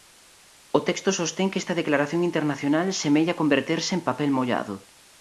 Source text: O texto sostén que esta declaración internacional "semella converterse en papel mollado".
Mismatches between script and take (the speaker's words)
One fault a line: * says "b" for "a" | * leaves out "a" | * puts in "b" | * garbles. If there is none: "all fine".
all fine